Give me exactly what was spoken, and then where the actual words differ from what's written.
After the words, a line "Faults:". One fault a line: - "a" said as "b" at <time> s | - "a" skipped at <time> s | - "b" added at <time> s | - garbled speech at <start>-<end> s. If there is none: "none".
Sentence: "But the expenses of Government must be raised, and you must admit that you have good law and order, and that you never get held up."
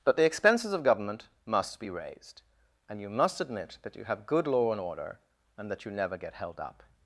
"But the expenses of Government must be raised, and you must admit that you have good law and order, and that you never get held up."
Faults:
none